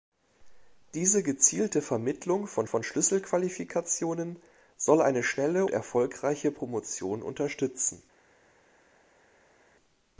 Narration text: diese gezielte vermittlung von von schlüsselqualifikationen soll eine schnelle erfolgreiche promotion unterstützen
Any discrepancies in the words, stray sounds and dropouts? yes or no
no